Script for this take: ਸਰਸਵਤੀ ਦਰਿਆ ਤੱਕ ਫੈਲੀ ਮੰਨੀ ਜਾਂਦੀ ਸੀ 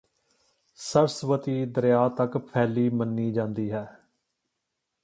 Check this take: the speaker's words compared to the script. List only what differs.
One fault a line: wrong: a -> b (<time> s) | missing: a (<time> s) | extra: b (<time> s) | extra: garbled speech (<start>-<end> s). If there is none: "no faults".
wrong: ਸੀ -> ਹੈ (3.7 s)